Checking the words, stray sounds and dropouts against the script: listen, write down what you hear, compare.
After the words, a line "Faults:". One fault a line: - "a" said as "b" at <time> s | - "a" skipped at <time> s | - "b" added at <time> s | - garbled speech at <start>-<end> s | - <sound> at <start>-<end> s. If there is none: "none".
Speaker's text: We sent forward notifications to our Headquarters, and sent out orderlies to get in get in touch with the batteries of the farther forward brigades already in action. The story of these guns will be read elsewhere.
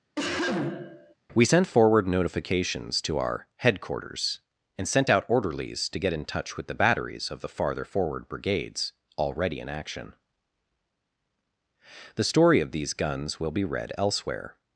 We sent forward notifications to our Headquarters, and sent out orderlies to get in touch with the batteries of the farther forward brigades already in action. The story of these guns will be read elsewhere.
Faults:
- cough at 0.2-1.1 s
- "get in" skipped at 6.2 s